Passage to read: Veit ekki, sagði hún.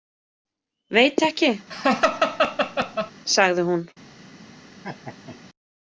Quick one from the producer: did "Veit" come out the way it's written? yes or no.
yes